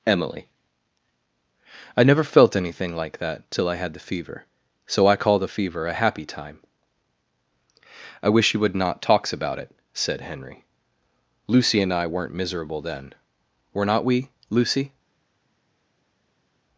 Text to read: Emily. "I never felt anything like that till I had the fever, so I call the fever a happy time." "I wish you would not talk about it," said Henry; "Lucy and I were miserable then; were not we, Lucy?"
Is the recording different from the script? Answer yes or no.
yes